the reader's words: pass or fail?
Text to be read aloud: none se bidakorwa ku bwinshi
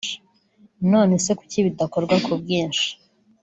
fail